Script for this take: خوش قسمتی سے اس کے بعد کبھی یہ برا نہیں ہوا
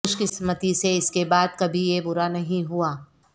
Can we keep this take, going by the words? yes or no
yes